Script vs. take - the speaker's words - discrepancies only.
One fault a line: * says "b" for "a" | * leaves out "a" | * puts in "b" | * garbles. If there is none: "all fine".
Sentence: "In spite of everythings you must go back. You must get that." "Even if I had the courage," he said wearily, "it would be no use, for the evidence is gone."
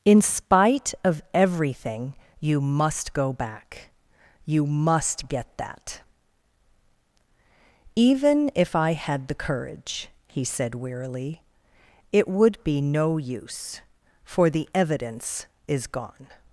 * says "everything" for "everythings"